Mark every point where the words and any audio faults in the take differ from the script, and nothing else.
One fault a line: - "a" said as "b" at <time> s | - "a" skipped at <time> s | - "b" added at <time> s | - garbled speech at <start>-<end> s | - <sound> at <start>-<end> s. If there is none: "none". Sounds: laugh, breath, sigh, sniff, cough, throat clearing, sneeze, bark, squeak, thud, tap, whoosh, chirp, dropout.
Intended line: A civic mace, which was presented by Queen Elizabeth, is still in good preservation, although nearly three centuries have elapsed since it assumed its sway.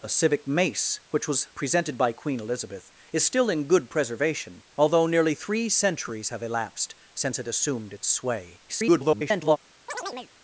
- garbled speech at 8.7-9.6 s
- chirp at 9.9-10.3 s